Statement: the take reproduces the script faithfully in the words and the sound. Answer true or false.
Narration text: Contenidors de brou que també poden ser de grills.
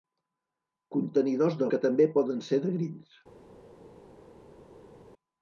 false